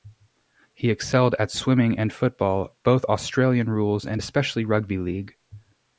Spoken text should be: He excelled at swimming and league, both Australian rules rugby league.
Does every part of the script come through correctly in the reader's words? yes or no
no